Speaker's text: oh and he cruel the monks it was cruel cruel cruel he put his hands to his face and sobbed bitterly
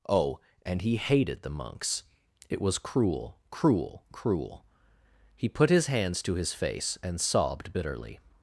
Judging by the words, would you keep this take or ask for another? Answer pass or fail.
fail